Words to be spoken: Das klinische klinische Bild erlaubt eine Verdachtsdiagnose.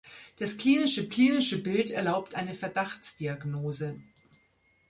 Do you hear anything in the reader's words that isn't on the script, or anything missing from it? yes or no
no